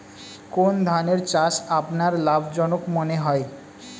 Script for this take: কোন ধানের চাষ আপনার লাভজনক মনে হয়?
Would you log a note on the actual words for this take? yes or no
no